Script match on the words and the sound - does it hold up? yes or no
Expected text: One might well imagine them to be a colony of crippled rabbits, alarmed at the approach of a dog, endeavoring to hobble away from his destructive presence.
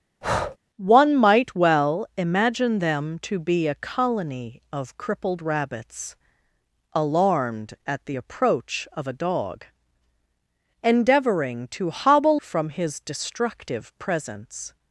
no